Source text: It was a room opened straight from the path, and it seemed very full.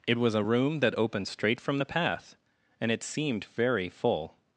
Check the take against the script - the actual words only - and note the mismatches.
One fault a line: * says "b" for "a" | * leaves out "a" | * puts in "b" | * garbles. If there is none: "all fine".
* puts in "that"